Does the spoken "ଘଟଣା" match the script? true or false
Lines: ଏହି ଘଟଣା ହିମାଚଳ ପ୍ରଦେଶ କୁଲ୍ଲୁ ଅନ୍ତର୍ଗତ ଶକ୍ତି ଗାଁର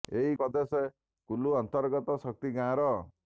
false